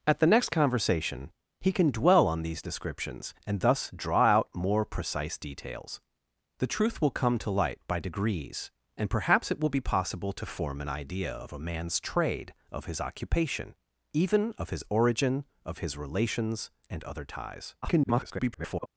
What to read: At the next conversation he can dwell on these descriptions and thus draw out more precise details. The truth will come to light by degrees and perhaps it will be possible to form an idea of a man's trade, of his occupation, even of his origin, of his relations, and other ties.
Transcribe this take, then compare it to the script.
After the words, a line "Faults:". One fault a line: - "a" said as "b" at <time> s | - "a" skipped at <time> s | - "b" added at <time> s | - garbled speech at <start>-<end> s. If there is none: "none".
At the next conversation he can dwell on these descriptions and thus draw out more precise details. The truth will come to light by degrees and perhaps it will be possible to form an idea of a man's trade, of his occupation, even of his origin, of his relations, and other ties. [garbled]
Faults:
- garbled speech at 17.8-18.9 s